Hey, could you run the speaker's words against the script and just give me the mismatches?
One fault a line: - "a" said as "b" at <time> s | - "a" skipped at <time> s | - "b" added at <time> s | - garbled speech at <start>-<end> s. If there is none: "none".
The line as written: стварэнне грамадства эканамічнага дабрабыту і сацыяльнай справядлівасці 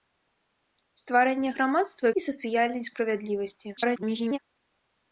- "эканамічнага дабрабыту" skipped at 2.1 s
- garbled speech at 3.8-4.4 s